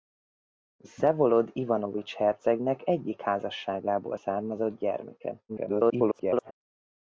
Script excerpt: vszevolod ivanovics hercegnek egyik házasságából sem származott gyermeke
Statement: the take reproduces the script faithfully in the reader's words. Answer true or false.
false